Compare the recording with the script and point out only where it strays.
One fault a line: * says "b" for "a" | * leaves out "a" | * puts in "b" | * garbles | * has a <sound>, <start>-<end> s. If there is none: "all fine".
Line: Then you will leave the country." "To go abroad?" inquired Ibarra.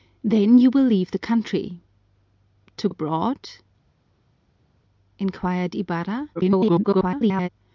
* leaves out "go"
* garbles